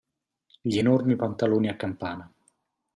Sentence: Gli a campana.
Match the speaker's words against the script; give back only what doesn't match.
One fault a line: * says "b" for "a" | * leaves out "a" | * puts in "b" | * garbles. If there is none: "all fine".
* puts in "enormi pantaloni"